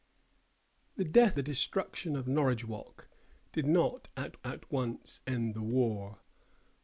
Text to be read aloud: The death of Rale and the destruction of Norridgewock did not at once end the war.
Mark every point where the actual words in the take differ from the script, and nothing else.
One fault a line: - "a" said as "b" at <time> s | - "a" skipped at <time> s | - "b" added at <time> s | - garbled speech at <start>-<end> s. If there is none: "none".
- "of Rale and" skipped at 1.4 s
- "at" added at 4.4 s